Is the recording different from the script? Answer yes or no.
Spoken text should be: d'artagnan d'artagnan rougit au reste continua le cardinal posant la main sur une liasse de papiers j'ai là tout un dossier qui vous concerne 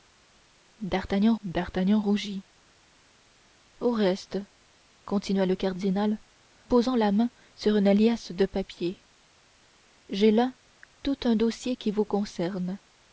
no